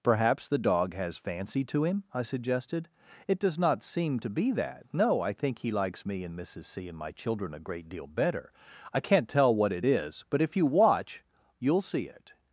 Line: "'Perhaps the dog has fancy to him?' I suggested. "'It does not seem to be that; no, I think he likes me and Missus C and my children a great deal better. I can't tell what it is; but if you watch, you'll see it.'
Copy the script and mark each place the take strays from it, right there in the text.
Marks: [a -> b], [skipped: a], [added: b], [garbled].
"'Perhaps the dog has fancy to him?' I suggested. "'It does not seem to be that; no, I think he likes me and Missus C and my children a great deal better. I can't tell what it is; but if you watch, you'll see it.'